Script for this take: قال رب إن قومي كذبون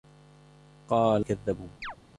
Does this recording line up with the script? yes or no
no